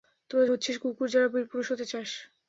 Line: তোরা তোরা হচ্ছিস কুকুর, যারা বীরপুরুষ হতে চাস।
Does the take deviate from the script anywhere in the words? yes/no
yes